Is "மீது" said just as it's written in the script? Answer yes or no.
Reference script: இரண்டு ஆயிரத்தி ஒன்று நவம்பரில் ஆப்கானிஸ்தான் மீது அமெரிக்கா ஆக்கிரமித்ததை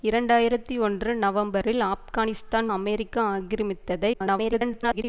no